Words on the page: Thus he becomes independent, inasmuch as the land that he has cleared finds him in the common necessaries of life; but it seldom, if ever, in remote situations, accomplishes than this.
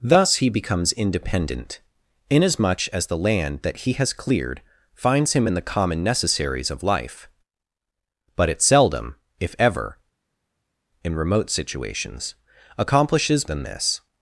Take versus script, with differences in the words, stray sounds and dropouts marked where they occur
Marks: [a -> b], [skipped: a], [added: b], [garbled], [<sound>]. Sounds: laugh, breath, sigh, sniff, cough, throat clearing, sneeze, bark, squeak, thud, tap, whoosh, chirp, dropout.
Thus he becomes independent, inasmuch as the land that he has cleared finds him in the common necessaries of life; but it seldom, if ever, in remote situations, accomplishes than this.